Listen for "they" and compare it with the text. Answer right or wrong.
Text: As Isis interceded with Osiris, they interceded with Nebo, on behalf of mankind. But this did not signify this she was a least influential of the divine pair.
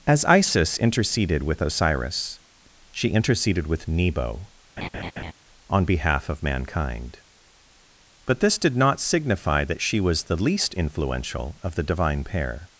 wrong